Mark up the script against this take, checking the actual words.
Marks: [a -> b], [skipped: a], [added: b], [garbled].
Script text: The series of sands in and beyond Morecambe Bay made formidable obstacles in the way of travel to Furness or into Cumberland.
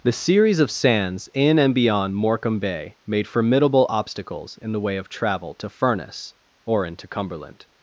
The series of sands in and beyond Morecambe Bay made formidable obstacles in the way of travel to Furness or into Cumberland.